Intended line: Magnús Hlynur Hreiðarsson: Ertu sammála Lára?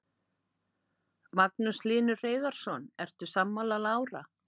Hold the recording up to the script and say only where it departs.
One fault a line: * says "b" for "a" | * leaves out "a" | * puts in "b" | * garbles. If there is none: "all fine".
all fine